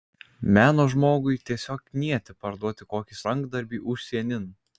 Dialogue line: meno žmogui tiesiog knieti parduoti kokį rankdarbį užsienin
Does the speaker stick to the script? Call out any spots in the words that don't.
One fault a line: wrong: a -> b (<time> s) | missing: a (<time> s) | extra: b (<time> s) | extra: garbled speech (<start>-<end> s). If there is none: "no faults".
no faults